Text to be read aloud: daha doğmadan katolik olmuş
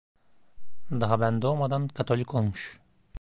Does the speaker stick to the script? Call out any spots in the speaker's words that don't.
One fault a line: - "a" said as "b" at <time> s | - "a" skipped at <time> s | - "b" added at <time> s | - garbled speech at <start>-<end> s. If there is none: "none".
- "ben" added at 1.2 s